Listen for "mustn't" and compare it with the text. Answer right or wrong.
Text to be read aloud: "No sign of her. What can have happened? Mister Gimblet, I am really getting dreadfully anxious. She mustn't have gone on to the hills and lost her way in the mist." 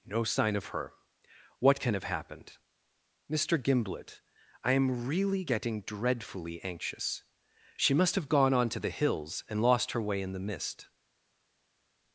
wrong